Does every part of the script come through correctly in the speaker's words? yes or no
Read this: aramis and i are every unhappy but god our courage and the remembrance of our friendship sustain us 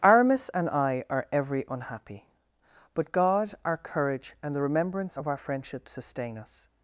yes